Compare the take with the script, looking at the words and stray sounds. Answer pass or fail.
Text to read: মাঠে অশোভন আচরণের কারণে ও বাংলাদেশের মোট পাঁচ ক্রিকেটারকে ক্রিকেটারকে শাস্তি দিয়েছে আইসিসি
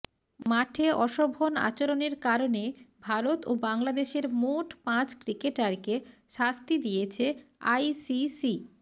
fail